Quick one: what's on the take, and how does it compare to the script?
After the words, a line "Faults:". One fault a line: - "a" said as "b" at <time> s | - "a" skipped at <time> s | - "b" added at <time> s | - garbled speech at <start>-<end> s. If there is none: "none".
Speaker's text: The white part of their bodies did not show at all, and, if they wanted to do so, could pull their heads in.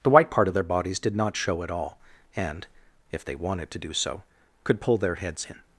The white part of their bodies did not show at all, and, if they wanted to do so, could pull their heads in.
Faults:
none